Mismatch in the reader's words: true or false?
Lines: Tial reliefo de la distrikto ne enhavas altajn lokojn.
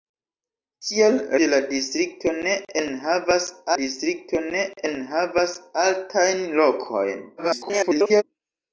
true